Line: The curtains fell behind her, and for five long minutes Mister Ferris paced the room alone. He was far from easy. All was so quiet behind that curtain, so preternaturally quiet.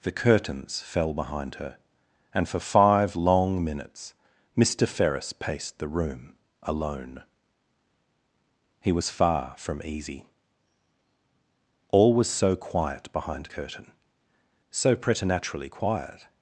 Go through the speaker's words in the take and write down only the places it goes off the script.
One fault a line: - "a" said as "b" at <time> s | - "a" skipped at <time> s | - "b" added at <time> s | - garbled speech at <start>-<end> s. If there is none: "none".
- "that" skipped at 13.5 s